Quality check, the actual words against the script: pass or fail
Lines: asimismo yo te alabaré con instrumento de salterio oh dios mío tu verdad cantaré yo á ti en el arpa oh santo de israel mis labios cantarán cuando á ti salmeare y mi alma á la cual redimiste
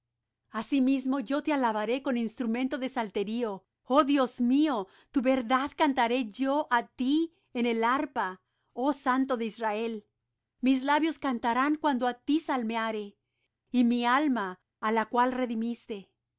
pass